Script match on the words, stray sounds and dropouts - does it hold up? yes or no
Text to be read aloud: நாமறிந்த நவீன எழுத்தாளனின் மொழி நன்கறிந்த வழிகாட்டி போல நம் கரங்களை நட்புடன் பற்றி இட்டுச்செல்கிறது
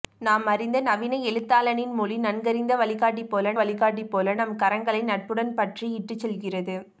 no